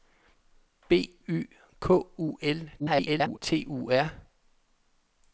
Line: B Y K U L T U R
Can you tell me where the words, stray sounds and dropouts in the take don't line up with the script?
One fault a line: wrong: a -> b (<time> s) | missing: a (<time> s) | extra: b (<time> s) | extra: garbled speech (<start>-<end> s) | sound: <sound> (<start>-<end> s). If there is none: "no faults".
extra: garbled speech (2.8-3.4 s)